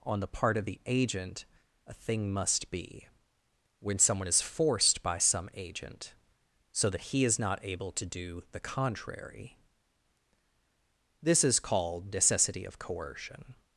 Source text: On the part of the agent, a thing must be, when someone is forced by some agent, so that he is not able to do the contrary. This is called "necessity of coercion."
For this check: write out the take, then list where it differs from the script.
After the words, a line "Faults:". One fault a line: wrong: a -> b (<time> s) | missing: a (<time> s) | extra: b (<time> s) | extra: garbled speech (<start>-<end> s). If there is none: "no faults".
On the part of the agent, a thing must be, when someone is forced by some agent, so that he is not able to do the contrary. This is called "necessity of coercion."
Faults:
no faults